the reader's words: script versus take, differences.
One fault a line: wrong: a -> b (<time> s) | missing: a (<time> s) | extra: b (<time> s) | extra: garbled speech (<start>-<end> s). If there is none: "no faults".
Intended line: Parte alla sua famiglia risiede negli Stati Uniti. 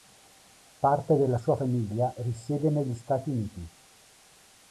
wrong: alla -> della (1.1 s)